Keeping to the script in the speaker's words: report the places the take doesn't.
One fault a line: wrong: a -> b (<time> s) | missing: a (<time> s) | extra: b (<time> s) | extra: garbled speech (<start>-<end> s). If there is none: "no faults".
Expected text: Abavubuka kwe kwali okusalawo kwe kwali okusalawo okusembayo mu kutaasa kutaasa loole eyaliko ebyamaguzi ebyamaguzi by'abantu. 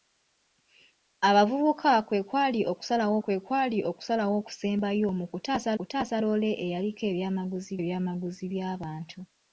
no faults